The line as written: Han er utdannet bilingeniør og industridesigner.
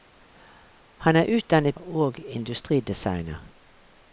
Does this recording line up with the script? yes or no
no